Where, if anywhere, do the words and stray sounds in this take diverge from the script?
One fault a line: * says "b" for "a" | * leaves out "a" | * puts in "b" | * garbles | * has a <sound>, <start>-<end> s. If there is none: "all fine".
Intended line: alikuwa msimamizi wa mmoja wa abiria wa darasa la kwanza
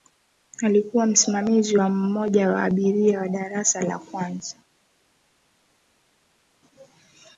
all fine